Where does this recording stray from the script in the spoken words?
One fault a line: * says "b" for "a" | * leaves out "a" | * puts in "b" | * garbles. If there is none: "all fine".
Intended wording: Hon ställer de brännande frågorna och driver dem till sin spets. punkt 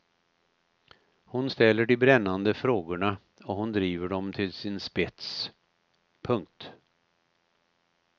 * puts in "hon"